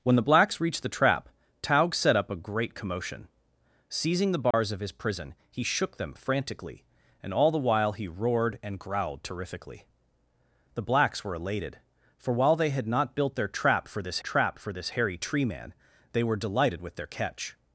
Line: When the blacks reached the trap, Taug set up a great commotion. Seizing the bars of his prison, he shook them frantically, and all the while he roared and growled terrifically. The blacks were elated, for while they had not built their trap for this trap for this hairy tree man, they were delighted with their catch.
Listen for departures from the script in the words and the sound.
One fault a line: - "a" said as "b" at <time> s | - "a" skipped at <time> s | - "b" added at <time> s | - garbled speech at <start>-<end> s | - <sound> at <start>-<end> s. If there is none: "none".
- dropout at 4.5-4.5 s